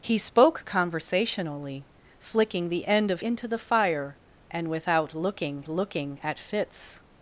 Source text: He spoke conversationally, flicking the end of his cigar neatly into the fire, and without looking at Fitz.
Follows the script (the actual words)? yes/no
no